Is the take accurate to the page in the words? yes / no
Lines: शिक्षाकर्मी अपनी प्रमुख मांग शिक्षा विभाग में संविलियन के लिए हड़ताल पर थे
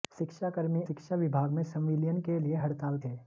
no